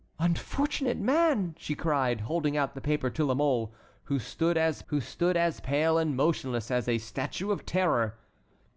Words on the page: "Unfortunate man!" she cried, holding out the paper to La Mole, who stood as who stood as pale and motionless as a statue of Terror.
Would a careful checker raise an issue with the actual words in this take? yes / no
no